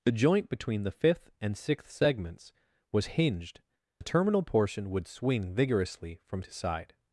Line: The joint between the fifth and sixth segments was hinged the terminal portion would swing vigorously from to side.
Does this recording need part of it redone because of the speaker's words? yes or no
no